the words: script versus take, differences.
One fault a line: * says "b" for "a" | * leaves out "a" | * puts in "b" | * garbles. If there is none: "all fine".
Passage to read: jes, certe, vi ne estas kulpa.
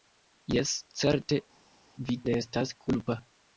all fine